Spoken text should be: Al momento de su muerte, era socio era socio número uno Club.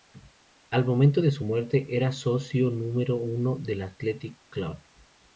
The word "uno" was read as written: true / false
false